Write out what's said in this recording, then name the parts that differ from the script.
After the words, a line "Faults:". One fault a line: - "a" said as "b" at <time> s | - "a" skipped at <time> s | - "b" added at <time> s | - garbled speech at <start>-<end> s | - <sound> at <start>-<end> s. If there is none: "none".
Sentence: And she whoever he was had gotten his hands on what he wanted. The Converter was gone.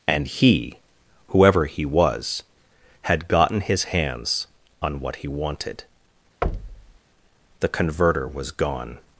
And he whoever he was had gotten his hands on what he wanted. The Converter was gone.
Faults:
- "she" said as "he" at 0.3 s
- thud at 6.4-7.0 s